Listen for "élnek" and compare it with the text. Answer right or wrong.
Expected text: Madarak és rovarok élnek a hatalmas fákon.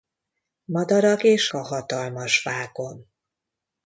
wrong